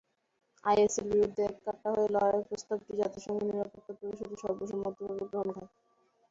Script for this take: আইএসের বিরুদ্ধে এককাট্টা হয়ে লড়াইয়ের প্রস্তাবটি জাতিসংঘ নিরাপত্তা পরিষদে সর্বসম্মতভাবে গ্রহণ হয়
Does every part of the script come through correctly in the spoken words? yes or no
yes